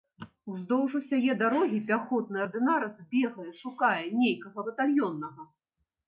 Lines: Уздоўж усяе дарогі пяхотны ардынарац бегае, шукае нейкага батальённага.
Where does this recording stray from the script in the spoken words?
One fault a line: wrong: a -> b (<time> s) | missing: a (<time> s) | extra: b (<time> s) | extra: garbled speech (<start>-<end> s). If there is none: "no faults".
no faults